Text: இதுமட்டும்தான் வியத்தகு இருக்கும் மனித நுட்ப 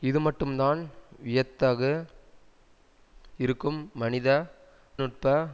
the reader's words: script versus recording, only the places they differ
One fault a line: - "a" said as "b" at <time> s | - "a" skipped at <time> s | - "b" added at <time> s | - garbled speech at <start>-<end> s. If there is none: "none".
none